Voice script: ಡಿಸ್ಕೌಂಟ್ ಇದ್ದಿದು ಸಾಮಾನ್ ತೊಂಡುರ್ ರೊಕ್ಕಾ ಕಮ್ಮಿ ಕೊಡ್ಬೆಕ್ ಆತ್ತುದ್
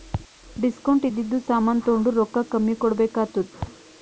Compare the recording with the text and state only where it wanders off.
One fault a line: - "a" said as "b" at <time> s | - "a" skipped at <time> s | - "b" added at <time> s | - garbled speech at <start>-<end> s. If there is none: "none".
none